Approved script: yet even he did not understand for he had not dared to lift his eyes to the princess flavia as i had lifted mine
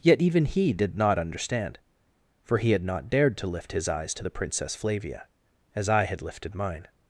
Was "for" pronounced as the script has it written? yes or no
yes